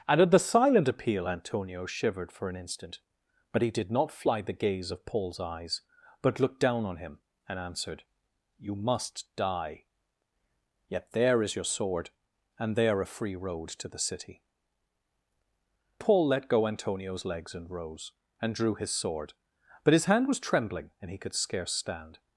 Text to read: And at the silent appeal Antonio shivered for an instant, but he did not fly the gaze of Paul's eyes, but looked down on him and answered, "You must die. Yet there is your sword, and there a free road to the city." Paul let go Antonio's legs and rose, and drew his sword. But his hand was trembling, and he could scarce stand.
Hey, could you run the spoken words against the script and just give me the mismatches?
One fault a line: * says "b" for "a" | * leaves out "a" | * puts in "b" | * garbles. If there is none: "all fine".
all fine